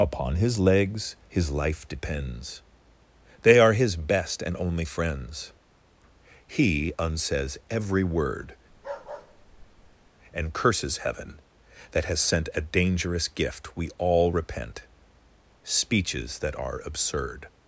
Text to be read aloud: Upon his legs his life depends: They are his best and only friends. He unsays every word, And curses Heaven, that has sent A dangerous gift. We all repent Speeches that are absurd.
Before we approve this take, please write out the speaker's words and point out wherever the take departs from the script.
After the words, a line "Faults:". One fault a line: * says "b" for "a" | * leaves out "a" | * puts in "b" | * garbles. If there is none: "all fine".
Upon his legs his life depends: They are his best and only friends. He unsays every word, And curses Heaven, that has sent A dangerous gift. We all repent Speeches that are absurd.
Faults:
all fine